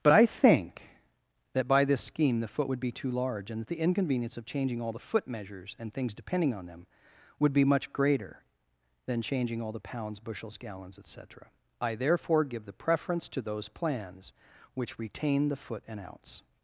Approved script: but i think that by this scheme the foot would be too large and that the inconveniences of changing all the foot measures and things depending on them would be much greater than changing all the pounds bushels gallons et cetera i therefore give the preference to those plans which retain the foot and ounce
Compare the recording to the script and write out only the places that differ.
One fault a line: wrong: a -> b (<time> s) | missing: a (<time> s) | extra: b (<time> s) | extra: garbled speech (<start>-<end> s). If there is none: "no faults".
wrong: inconveniences -> inconvenience (3.8 s)